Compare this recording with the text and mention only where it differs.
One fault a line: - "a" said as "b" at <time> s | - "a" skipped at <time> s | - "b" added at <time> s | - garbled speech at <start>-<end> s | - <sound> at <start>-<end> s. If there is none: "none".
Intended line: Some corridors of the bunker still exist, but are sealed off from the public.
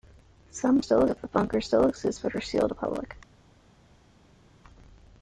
- "corridors" said as "still" at 0.8 s
- "off from" skipped at 2.7 s